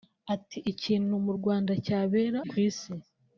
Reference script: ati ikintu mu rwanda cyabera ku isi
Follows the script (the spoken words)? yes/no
yes